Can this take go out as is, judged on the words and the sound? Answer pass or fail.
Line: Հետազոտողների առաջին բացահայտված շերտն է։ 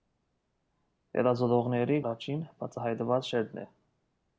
pass